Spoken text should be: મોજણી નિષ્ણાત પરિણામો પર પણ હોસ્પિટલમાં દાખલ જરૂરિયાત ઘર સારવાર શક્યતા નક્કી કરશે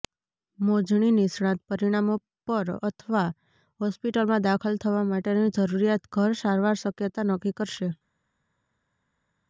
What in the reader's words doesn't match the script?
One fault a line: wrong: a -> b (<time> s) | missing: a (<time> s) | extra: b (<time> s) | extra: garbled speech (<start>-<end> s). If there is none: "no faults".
wrong: પણ -> અથવા (2.9 s)
extra: થવા માટેની (4.8 s)